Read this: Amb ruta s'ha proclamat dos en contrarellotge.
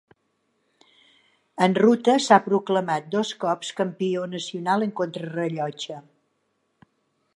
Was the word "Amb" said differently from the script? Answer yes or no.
yes